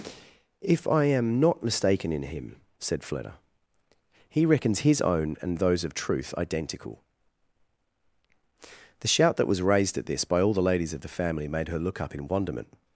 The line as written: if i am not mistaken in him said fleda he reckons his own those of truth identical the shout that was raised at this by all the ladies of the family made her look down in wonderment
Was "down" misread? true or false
true